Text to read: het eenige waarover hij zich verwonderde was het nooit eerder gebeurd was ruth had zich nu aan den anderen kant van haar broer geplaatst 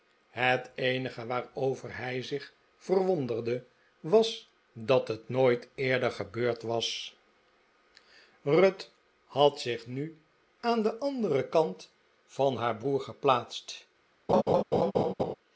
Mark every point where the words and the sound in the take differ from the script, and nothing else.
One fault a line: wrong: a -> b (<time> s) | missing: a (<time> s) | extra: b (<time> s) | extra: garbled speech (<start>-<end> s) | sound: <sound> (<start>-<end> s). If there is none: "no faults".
extra: dat (4.7 s)
sound: laugh (14.3-15.3 s)